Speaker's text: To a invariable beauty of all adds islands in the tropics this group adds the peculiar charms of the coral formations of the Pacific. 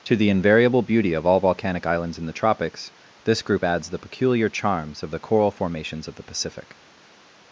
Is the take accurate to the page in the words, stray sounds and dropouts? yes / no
no